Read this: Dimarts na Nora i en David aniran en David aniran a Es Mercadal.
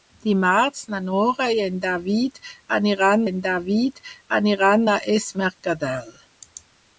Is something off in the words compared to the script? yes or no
no